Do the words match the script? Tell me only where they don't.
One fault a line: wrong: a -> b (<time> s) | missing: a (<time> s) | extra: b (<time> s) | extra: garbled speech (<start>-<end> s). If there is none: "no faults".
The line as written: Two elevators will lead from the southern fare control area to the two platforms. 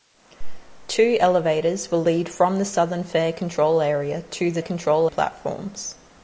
wrong: two -> control (4.6 s)